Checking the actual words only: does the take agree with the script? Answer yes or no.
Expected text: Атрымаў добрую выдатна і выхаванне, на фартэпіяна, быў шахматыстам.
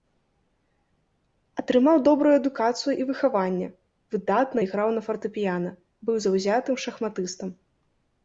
no